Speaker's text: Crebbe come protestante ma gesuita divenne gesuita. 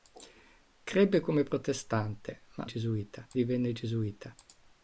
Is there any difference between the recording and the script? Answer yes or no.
no